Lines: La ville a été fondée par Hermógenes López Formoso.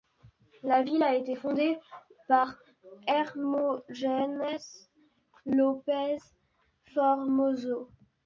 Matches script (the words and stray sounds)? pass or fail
pass